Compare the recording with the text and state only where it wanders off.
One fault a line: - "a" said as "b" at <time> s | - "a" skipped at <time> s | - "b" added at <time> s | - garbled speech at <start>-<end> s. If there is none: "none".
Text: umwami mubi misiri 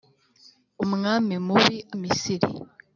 none